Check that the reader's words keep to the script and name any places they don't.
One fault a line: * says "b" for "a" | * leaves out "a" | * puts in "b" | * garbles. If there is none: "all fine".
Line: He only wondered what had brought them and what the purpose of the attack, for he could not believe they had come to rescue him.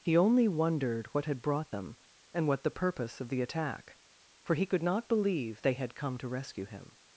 all fine